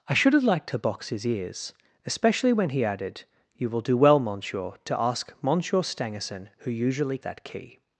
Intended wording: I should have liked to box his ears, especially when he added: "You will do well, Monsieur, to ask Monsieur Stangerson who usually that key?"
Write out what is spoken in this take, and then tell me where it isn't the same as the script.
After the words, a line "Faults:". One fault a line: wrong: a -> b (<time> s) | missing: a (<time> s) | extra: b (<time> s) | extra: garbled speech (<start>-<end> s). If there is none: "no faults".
I should have liked to box his ears, especially when he added: "You will do well, Monsieur, to ask Monsieur Stangerson who usually that key?"
Faults:
no faults